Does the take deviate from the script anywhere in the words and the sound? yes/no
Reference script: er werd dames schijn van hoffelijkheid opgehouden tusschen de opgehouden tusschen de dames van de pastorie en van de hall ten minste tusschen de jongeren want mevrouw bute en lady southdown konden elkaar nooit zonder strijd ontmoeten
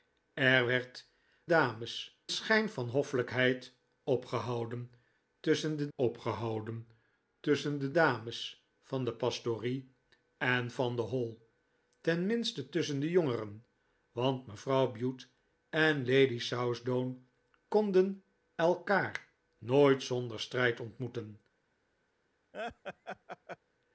yes